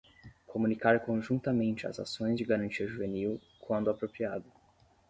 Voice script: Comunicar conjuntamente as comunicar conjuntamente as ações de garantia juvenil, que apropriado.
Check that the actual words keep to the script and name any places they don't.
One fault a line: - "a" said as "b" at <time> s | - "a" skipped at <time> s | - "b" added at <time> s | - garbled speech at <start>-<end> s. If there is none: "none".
- "comunicar conjuntamente as" skipped at 2.0 s
- "que" said as "quando" at 3.6 s